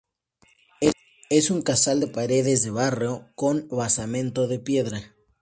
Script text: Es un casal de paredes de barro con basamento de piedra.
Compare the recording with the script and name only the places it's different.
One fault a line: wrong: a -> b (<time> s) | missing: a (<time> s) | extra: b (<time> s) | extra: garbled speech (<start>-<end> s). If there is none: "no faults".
no faults